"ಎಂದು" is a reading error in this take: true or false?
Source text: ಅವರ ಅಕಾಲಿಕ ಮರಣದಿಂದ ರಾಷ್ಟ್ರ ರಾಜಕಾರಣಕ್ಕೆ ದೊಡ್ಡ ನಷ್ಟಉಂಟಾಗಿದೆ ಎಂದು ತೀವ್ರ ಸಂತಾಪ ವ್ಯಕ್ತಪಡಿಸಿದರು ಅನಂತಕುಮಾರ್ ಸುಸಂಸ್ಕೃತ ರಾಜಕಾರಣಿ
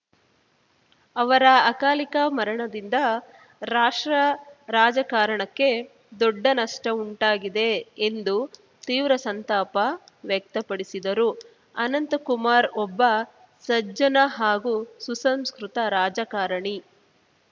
false